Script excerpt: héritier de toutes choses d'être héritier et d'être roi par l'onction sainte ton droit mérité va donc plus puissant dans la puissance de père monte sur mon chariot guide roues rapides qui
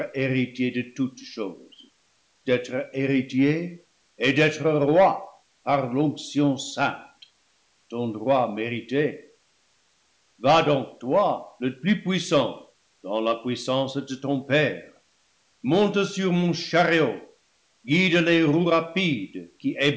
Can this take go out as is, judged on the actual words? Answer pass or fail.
fail